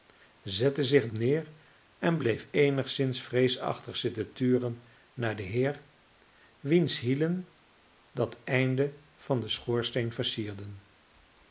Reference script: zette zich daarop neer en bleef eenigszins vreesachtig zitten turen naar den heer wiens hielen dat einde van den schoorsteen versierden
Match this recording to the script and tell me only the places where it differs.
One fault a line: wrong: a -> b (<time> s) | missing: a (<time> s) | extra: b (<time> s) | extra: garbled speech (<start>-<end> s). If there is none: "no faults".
missing: daarop (1.1 s)